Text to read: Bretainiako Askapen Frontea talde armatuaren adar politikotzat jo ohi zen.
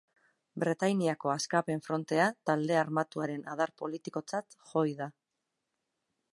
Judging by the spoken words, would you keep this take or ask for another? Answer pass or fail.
fail